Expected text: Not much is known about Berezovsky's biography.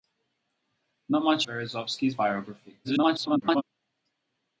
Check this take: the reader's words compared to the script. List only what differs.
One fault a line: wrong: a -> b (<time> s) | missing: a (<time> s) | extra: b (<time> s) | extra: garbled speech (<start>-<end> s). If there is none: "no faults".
missing: is known about (1.4 s)
extra: garbled speech (2.8-3.6 s)